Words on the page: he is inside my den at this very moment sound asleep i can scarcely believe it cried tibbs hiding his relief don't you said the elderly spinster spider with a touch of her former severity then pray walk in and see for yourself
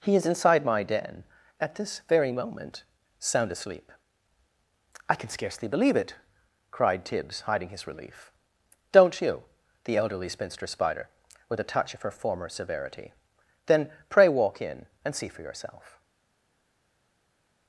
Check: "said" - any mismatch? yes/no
yes